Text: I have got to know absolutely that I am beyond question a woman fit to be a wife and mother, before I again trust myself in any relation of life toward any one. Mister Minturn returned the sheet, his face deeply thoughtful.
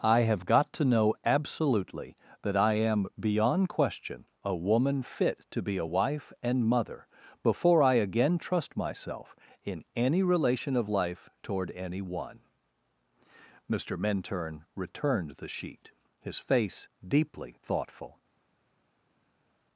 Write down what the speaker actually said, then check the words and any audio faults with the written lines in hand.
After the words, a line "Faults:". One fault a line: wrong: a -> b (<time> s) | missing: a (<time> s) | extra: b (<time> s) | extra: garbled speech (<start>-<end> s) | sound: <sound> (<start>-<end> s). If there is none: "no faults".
I have got to know absolutely that I am beyond question a woman fit to be a wife and mother, before I again trust myself in any relation of life toward any one. Mister Minturn returned the sheet, his face deeply thoughtful.
Faults:
no faults